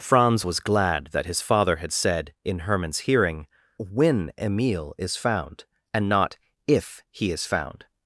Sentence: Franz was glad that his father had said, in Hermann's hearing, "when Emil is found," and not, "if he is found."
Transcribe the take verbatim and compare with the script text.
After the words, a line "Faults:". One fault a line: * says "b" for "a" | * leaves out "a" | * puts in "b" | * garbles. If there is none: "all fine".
Franz was glad that his father had said, in Hermann's hearing, "when Emil is found," and not, "if he is found."
Faults:
all fine